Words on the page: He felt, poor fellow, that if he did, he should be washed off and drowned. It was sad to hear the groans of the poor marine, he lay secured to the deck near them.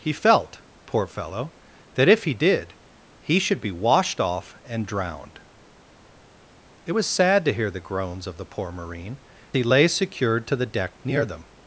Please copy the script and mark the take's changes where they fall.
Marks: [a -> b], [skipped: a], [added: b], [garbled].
He felt, poor fellow, that if he did, he should be washed off and drowned. It was sad to hear the groans of the poor marine, he lay secured to the deck near them.